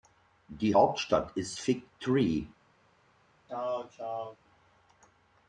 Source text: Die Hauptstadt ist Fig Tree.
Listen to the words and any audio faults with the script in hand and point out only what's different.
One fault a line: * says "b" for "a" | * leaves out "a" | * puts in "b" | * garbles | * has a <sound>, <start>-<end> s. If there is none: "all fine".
* has a throat clearing, 3.5-4.4 s